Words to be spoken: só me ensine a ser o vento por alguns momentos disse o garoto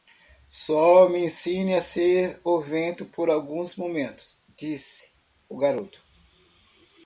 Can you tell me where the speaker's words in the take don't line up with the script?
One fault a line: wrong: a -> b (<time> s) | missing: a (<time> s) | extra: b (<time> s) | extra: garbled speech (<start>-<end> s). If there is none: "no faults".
no faults